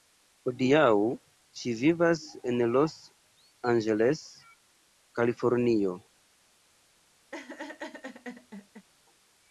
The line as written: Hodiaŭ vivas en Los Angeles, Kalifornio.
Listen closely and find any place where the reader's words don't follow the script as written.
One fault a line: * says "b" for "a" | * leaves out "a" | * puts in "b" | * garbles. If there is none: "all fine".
* puts in "ŝi"